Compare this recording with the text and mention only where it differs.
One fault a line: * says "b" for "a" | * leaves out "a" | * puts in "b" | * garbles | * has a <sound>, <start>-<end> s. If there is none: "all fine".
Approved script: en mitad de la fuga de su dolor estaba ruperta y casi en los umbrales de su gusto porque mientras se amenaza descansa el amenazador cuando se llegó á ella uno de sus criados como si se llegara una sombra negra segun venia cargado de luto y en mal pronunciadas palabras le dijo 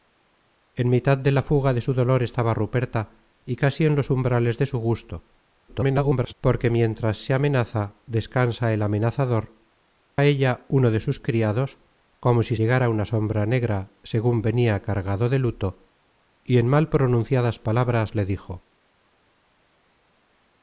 * garbles
* leaves out "cuando se llegó"
* leaves out "se"